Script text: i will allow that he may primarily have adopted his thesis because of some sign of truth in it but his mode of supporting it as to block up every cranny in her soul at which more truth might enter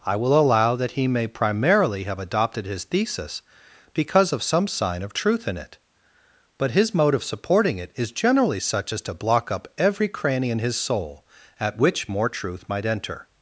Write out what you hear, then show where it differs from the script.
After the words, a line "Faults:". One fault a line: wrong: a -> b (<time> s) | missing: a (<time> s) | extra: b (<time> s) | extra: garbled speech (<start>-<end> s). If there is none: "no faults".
i will allow that he may primarily have adopted his thesis because of some sign of truth in it but his mode of supporting it is generally such as to block up every cranny in his soul at which more truth might enter
Faults:
extra: is generally such (8.0 s)
wrong: her -> his (10.6 s)